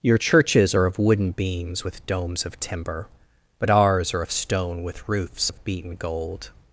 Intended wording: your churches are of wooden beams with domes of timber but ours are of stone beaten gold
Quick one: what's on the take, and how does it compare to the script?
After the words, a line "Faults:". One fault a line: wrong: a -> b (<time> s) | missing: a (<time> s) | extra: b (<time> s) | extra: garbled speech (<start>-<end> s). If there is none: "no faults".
your churches are of wooden beams with domes of timber but ours are of stone with roofs of beaten gold
Faults:
extra: with roofs of (4.8 s)